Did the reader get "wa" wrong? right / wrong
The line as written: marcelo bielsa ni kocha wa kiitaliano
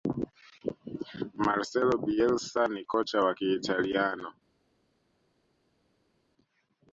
right